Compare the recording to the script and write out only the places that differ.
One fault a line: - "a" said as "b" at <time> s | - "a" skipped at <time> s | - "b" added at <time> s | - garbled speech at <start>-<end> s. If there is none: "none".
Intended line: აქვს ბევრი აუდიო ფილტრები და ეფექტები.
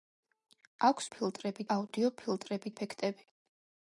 - "ბევრი" said as "ფილტრები" at 1.2 s
- "და" skipped at 2.7 s